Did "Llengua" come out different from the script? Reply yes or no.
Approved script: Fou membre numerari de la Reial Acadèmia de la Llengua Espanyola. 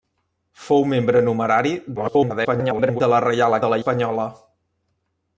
yes